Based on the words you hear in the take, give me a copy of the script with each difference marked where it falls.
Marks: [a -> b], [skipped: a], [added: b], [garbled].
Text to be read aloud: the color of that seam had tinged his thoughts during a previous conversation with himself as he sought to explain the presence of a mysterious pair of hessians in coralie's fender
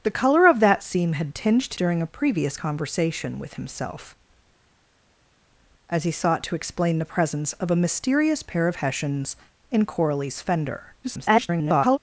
the color of that seam had tinged [skipped: his thoughts] during a previous conversation with himself as he sought to explain the presence of a mysterious pair of hessians in coralie's fender [garbled]